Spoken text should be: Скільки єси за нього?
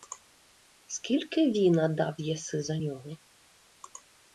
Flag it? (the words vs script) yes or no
yes